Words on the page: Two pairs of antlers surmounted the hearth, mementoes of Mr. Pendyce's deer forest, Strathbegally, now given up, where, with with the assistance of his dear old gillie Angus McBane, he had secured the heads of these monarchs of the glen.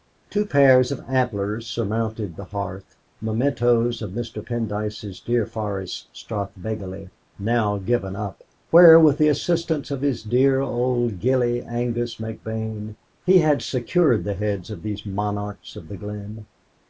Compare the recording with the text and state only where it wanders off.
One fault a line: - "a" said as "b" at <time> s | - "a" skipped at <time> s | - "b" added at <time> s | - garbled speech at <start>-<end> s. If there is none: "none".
- "with" skipped at 9.2 s